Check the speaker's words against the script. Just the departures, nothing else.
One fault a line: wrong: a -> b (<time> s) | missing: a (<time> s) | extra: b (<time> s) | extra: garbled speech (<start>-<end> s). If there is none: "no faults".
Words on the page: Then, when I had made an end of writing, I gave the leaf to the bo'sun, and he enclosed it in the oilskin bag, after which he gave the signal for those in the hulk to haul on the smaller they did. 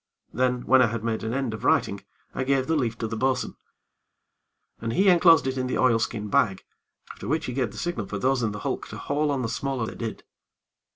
no faults